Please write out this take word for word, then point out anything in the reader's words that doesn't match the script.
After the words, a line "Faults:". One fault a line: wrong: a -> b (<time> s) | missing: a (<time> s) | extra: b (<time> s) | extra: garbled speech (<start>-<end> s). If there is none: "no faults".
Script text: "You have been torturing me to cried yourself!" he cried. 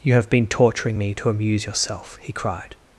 "You have been torturing me to amuse yourself!" he cried.
Faults:
wrong: cried -> amuse (1.3 s)